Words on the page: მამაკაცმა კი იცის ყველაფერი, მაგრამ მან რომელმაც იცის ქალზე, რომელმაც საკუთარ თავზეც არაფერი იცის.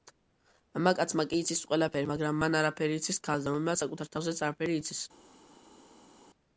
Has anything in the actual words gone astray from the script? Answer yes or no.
yes